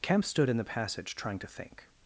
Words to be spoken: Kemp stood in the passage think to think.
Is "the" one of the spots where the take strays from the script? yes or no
no